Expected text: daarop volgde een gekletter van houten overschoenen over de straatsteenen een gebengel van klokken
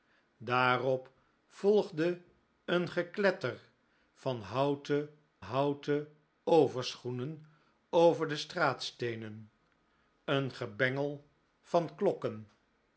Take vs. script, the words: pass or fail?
fail